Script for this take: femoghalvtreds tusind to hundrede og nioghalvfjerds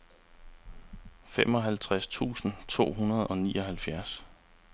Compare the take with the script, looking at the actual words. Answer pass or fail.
pass